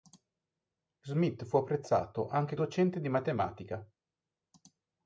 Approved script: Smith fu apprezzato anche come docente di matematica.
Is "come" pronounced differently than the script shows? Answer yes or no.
yes